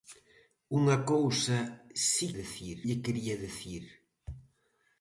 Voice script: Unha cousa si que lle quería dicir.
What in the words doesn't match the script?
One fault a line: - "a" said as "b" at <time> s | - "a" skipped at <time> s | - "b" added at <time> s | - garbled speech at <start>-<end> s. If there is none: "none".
- "que" said as "dicir" at 2.4 s